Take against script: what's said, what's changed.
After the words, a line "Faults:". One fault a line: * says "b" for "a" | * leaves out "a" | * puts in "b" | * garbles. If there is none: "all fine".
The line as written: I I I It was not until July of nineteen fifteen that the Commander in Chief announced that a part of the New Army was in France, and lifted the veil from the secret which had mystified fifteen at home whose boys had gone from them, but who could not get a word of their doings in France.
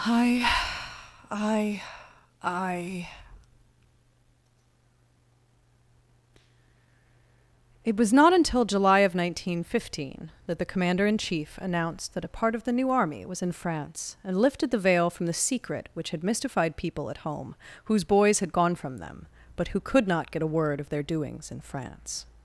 I I I It was not until July of nineteen fifteen that the Commander in Chief announced that a part of the New Army was in France, and lifted the veil from the secret which had mystified people at home whose boys had gone from them, but who could not get a word of their doings in France.
Faults:
* says "people" for "fifteen"